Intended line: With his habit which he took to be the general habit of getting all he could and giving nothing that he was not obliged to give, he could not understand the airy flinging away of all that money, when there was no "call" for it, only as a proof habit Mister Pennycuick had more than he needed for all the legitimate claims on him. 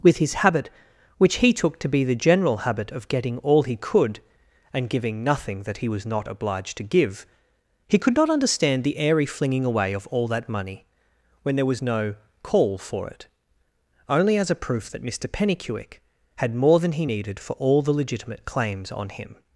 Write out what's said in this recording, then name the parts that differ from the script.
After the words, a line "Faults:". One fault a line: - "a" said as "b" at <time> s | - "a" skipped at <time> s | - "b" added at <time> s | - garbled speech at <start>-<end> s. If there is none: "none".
With his habit which he took to be the general habit of getting all he could and giving nothing that he was not obliged to give, he could not understand the airy flinging away of all that money, when there was no "call" for it, only as a proof that Mister Pennycuick had more than he needed for all the legitimate claims on him.
Faults:
- "habit" said as "that" at 14.9 s